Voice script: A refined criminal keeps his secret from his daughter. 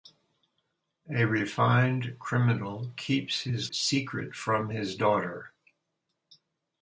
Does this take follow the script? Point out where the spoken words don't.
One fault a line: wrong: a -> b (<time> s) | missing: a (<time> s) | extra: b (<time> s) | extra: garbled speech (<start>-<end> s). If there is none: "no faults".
no faults